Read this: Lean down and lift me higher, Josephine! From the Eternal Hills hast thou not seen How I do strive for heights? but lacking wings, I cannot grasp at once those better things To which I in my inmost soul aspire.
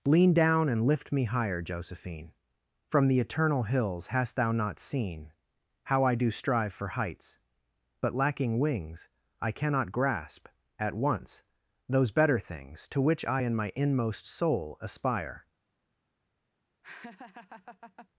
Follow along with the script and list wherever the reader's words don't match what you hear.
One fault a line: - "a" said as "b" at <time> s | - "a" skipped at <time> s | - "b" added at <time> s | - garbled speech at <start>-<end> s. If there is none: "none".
none